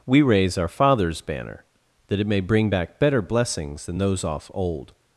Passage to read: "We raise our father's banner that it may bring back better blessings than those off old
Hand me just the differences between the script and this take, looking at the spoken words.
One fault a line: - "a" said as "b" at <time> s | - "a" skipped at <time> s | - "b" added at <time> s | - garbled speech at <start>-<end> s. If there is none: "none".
none